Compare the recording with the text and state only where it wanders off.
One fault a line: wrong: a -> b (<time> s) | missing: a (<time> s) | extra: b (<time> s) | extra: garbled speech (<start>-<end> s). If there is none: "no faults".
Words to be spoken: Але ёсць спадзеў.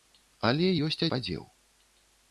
no faults